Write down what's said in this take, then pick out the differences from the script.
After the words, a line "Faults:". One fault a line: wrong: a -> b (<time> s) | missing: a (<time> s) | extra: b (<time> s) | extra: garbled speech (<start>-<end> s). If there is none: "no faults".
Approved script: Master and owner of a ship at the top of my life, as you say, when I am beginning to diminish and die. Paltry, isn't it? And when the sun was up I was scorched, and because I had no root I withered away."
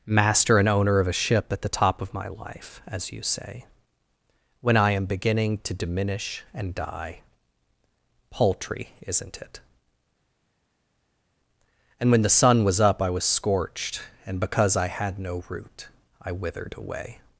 Master and owner of a ship at the top of my life, as you say, when I am beginning to diminish and die. Paltry, isn't it? And when the sun was up I was scorched, and because I had no root I withered away."
Faults:
no faults